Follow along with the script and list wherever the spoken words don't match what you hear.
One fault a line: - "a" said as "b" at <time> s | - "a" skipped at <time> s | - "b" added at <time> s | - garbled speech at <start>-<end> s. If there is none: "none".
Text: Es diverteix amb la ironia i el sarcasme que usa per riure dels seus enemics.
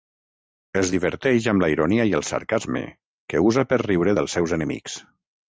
none